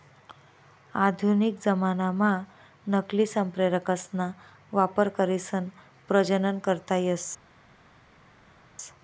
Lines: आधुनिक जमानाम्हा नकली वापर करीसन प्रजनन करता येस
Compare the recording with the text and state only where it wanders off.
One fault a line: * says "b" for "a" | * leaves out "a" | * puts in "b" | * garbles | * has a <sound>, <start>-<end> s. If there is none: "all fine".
* puts in "संप्रेरकसना"